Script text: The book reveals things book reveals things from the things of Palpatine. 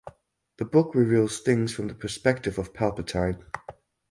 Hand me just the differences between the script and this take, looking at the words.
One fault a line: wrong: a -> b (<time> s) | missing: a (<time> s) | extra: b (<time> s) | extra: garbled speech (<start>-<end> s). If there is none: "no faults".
missing: book reveals things (1.7 s)
wrong: things -> perspective (1.9 s)